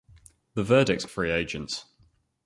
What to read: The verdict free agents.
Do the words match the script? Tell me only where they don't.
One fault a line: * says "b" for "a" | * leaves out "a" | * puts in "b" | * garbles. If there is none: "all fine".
all fine